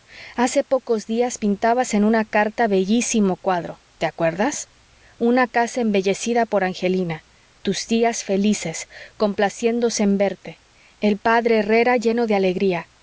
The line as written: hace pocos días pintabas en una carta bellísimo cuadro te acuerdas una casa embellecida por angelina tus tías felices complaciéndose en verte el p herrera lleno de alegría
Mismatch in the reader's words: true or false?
false